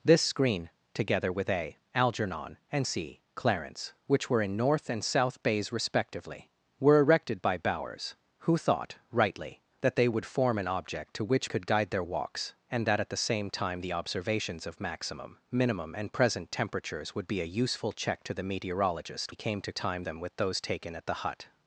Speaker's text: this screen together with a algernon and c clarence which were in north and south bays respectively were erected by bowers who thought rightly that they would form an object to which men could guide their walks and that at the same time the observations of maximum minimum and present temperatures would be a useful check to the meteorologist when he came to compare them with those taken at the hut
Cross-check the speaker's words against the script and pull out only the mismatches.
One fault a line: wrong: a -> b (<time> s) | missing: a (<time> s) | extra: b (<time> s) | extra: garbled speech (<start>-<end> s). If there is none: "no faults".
missing: men (11.5 s)
missing: when (19.3 s)
wrong: compare -> time (19.7 s)